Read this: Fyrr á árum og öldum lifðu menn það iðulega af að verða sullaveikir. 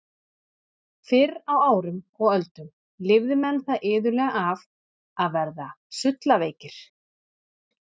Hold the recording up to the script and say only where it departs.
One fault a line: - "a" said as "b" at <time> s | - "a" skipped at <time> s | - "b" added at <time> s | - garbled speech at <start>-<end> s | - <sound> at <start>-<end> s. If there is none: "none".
none